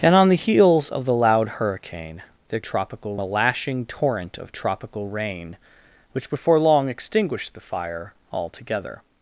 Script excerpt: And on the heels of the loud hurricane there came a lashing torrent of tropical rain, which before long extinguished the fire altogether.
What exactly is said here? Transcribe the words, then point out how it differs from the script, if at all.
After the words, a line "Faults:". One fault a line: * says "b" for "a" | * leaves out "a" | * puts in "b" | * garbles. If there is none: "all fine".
And on the heels of the loud hurricane there tropical a lashing torrent of tropical rain, which before long extinguished the fire altogether.
Faults:
* says "tropical" for "came"